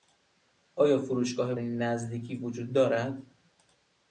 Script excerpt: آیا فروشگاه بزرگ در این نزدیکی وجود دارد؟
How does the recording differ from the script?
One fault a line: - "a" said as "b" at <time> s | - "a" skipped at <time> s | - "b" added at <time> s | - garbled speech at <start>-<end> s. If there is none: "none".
- "بزرگ در" skipped at 1.5 s